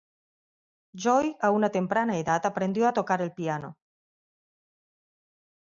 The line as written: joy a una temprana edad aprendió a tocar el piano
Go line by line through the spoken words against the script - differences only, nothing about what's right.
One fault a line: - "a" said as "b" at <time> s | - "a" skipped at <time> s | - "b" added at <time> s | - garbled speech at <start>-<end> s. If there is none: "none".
none